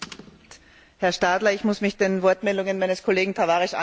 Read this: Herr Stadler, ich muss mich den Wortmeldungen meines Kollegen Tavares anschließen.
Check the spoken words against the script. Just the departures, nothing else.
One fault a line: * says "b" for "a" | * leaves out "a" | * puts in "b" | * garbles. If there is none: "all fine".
all fine